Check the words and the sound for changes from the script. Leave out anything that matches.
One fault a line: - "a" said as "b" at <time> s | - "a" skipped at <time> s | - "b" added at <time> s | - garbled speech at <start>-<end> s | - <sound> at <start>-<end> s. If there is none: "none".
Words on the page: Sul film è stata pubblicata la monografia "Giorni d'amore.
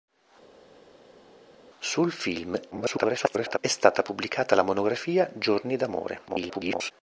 - garbled speech at 2.7-3.6 s
- garbled speech at 6.3-6.9 s